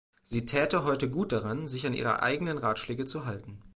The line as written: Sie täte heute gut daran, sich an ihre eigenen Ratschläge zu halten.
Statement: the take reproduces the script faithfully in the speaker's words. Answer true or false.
true